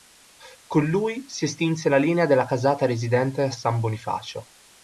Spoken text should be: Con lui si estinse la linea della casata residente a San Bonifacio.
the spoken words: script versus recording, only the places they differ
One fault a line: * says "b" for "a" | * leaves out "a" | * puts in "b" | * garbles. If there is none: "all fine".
all fine